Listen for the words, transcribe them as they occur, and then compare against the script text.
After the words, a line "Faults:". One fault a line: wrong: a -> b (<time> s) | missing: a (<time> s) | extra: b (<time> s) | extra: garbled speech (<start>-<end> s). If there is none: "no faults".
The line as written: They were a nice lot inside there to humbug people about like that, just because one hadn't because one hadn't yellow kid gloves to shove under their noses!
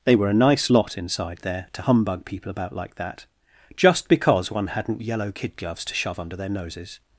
They were a nice lot inside there to humbug people about like that, just because one hadn't yellow kid gloves to shove under their noses!
Faults:
missing: because one hadn't (5.0 s)